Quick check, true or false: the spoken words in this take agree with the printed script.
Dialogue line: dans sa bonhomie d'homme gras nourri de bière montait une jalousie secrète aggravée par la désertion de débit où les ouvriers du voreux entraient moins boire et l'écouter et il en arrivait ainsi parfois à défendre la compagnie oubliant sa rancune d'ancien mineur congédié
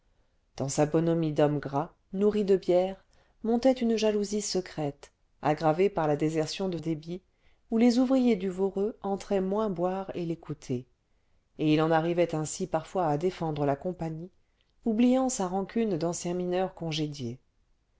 true